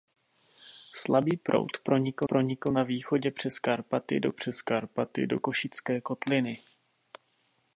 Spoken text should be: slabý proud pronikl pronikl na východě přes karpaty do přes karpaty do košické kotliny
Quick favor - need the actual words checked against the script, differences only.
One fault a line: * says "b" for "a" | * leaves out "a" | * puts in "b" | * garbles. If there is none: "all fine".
all fine